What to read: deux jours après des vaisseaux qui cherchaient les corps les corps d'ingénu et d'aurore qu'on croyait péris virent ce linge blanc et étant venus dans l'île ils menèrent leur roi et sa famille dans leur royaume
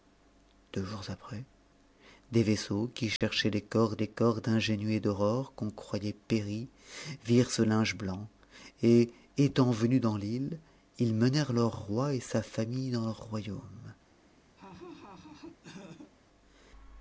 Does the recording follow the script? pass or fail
pass